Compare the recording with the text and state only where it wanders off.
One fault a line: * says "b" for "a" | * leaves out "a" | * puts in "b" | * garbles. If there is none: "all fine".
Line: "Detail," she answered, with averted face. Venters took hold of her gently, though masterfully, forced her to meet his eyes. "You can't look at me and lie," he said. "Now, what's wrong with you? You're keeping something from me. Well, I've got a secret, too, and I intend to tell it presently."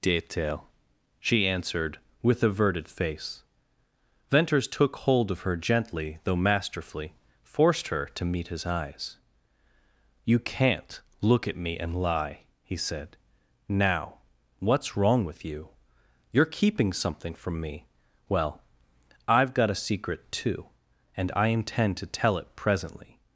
all fine